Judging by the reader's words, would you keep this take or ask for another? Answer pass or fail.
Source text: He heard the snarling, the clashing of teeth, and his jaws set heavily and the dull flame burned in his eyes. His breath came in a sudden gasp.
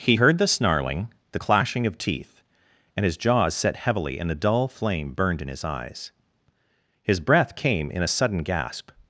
pass